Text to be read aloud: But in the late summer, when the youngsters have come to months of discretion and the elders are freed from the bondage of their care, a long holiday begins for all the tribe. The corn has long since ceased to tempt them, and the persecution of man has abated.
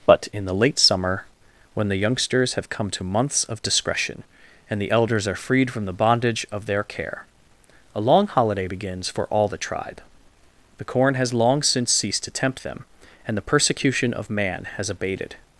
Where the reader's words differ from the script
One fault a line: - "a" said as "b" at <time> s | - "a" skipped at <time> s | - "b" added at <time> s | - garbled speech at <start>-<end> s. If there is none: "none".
none